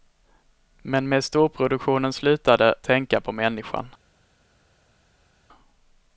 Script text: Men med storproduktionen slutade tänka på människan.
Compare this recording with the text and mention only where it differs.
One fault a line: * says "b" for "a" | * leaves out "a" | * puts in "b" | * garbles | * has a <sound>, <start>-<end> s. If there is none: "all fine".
all fine